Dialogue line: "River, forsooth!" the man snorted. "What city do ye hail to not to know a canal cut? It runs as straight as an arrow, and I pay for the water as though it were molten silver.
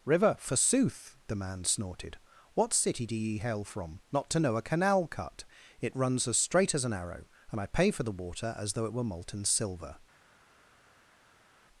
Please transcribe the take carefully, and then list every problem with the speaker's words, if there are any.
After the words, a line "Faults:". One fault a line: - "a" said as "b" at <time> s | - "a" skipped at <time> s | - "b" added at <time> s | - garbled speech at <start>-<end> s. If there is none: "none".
"River, forsooth!" the man snorted. "What city do ye hail from not to know a canal cut? It runs as straight as an arrow, and I pay for the water as though it were molten silver.
Faults:
- "to" said as "from" at 3.6 s